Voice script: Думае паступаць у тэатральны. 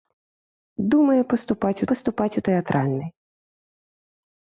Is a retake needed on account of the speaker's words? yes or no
yes